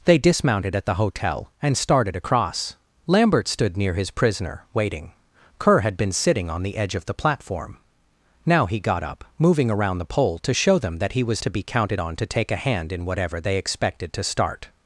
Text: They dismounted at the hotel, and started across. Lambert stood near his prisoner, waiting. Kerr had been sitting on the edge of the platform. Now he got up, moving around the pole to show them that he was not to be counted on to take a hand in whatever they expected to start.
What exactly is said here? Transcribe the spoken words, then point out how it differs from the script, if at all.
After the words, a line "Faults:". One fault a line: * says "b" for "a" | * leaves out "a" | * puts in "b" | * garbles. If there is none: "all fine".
They dismounted at the hotel, and started across. Lambert stood near his prisoner, waiting. Kerr had been sitting on the edge of the platform. Now he got up, moving around the pole to show them that he was to be counted on to take a hand in whatever they expected to start.
Faults:
* leaves out "not"